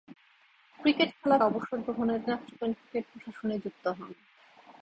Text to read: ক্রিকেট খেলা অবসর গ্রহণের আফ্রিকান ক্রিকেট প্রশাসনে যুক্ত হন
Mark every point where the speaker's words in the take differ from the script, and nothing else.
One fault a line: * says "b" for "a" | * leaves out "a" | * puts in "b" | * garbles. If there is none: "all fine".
all fine